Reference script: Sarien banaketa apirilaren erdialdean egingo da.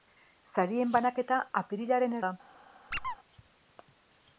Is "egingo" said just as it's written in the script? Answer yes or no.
no